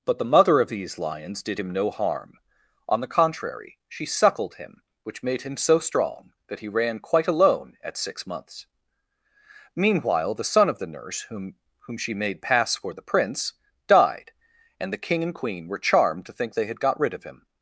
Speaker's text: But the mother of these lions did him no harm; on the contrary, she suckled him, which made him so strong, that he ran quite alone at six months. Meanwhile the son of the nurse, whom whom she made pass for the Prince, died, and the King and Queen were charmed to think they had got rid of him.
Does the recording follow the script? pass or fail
pass